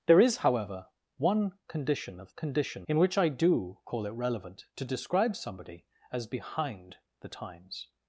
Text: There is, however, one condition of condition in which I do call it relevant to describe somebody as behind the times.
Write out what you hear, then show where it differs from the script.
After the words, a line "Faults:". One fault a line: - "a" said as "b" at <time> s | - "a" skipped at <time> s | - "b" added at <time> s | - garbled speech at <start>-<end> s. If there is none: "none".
There is, however, one condition of condition in which I do call it relevant to describe somebody as behind the times.
Faults:
none